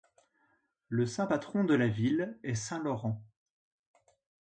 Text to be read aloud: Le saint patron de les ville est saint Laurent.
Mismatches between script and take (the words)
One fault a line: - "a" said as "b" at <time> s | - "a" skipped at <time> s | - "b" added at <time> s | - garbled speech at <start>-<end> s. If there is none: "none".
- "les" said as "la" at 1.7 s